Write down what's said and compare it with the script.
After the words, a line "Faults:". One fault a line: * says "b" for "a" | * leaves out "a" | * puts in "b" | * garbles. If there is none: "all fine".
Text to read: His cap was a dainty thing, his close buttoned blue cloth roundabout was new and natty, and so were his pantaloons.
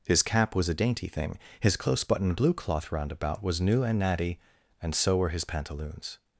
His cap was a dainty thing, his close buttoned blue cloth roundabout was new and natty, and so were his pantaloons.
Faults:
all fine